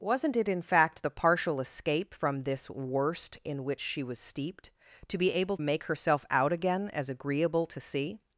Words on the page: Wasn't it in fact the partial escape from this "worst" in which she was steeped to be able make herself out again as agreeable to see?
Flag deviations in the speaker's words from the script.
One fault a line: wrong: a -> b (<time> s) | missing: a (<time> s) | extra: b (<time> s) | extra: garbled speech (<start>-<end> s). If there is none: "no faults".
no faults